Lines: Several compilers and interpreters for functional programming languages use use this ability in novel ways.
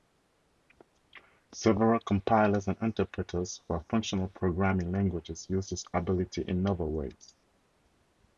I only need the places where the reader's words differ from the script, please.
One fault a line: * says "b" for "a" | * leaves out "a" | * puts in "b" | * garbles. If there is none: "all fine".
* leaves out "use"